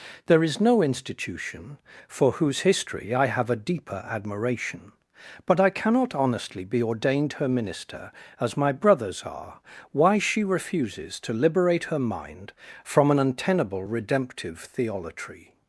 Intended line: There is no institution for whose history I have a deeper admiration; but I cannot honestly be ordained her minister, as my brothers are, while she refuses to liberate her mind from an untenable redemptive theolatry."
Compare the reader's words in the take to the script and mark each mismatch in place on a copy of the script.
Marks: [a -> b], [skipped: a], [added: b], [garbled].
There is no institution for whose history I have a deeper admiration; but I cannot honestly be ordained her minister, as my brothers are, [while -> why] she refuses to liberate her mind from an untenable redemptive theolatry."